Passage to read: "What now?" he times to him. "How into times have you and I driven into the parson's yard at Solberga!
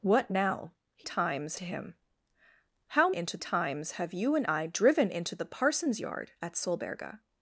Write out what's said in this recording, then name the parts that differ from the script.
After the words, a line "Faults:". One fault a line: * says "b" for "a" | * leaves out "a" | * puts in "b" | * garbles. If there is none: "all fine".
"What now?" he times to him. "How into times have you and I driven into the parson's yard at Solberga!
Faults:
all fine